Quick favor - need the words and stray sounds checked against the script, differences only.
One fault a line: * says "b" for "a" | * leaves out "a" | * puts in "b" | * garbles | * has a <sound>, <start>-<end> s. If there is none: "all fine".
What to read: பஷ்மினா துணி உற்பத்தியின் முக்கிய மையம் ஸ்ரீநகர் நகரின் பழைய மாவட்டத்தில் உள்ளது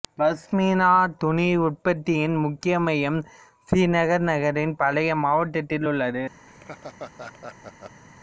* has a laugh, 6.5-8.0 s